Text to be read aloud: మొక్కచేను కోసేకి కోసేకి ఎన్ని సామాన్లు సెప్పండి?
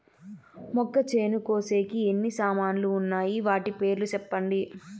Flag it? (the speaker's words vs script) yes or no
yes